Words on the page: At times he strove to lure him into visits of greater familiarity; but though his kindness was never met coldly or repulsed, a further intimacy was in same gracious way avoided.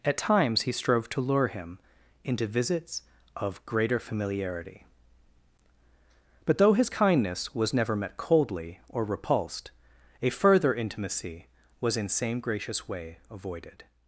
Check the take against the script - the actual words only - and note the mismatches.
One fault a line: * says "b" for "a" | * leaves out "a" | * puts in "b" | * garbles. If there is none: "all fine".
all fine